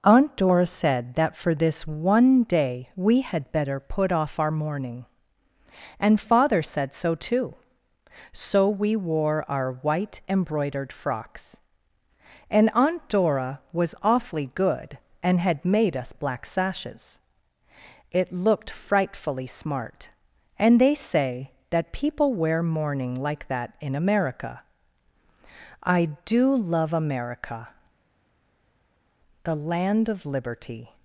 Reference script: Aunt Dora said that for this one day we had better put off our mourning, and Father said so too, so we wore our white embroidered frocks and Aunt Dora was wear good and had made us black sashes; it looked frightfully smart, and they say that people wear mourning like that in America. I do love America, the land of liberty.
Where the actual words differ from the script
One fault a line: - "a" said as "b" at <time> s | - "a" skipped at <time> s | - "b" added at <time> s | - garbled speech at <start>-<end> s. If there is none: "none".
- "wear" said as "awfully" at 14.0 s